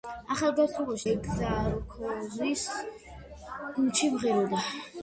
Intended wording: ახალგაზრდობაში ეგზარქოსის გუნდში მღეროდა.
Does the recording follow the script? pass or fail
pass